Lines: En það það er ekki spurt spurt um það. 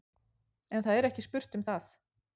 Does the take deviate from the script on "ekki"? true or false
false